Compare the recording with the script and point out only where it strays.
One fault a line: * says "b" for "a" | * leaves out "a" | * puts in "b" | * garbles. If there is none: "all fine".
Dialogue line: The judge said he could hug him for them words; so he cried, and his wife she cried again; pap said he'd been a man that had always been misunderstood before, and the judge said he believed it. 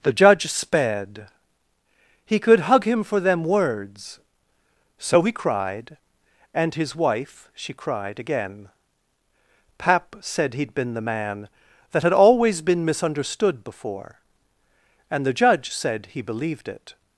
* says "sped" for "said"
* says "the" for "a"